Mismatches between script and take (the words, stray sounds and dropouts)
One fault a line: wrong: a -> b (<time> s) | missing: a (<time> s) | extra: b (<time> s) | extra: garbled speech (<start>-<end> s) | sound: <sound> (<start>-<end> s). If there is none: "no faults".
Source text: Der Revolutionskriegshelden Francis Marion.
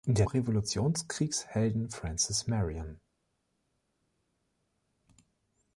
no faults